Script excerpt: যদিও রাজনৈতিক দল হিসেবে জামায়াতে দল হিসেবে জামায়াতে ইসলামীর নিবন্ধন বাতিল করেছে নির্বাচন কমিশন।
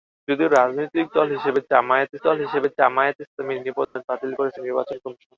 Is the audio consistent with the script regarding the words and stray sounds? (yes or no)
no